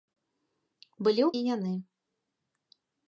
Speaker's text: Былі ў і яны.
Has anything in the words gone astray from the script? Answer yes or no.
no